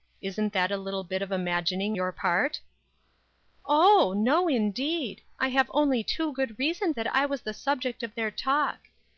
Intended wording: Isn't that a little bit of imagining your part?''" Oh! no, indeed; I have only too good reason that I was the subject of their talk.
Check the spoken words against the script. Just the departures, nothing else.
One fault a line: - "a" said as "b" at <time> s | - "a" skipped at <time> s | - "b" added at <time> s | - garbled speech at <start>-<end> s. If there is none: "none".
none